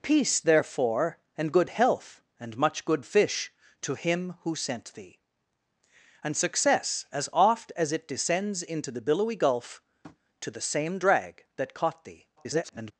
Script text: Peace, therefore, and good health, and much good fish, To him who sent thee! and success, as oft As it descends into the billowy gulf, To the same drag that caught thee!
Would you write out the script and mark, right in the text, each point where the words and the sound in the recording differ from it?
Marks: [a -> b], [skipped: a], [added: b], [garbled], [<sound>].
Peace, therefore, and good health, and much good fish, To him who sent thee! and success, as oft As it descends into the billowy gulf, [tap] To the same drag that caught thee! [garbled]